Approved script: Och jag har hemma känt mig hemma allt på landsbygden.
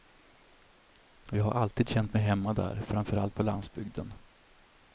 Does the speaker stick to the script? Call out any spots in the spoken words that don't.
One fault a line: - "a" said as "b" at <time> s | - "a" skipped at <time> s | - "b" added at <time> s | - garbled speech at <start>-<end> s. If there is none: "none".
- "hemma" said as "alltid" at 1.5 s
- "där framför" added at 2.5 s